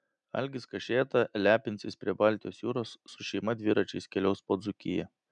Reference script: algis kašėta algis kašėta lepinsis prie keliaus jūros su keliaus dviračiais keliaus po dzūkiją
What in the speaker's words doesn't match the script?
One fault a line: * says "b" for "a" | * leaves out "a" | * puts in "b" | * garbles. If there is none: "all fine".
* leaves out "algis kašėta"
* says "baltijos" for "keliaus"
* says "šeima" for "keliaus"